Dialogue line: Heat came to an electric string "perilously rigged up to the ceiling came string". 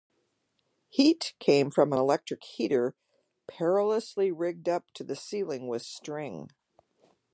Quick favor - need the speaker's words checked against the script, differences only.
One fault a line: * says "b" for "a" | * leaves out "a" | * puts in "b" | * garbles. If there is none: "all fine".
* says "from" for "to"
* says "heater" for "string"
* says "with" for "came"